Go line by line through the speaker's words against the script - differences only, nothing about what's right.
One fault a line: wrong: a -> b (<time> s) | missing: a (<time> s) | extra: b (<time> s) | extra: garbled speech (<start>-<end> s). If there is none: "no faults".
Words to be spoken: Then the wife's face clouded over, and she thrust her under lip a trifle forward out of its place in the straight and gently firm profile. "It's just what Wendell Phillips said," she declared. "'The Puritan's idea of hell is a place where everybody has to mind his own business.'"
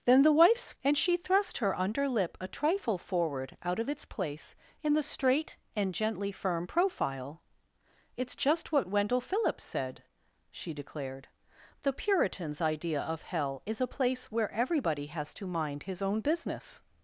missing: face clouded over (0.7 s)